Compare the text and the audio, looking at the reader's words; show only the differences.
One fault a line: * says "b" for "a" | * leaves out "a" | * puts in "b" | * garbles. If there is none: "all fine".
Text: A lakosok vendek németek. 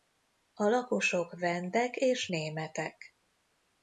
* puts in "és"